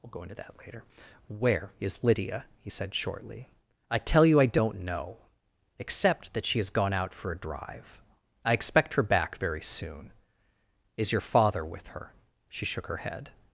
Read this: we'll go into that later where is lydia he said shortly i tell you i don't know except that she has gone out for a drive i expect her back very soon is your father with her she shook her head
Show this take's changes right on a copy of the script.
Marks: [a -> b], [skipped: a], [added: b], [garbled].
we'll go into that later where is lydia he said shortly i tell you i don't know except that she has gone out for a drive i expect her back very soon is your father with her she shook her head